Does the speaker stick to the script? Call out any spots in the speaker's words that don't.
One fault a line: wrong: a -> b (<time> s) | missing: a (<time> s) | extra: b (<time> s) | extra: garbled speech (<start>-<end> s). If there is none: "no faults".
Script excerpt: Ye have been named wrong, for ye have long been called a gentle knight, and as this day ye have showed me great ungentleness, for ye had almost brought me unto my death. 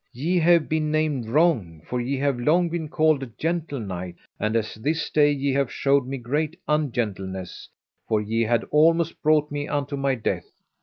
no faults